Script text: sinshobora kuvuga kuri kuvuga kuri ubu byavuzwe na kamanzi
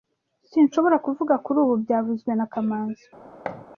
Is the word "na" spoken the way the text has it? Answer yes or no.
yes